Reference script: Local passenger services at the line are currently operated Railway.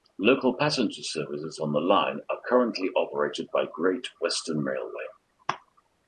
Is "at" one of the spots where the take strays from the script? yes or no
yes